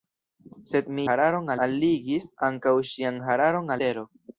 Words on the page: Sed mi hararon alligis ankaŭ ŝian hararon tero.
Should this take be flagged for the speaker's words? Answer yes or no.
no